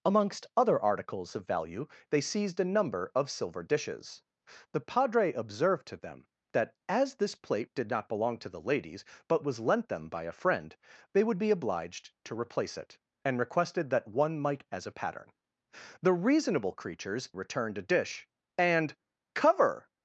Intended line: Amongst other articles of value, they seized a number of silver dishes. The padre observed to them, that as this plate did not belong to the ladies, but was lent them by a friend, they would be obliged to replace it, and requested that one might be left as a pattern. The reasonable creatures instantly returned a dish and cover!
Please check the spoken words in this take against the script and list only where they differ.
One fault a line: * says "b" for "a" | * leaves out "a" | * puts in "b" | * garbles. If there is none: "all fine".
* leaves out "be left"
* leaves out "instantly"